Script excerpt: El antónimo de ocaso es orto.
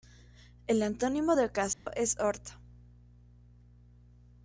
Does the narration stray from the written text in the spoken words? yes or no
no